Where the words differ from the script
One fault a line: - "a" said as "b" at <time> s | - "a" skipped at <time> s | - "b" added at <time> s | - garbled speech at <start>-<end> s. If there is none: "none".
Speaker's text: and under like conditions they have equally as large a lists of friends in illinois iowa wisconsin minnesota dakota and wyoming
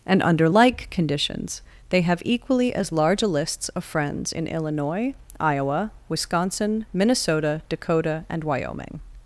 none